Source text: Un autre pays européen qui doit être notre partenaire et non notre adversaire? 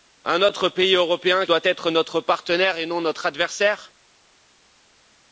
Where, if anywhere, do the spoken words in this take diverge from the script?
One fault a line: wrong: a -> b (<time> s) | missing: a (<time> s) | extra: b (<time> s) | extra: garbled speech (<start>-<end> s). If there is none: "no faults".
missing: qui (1.4 s)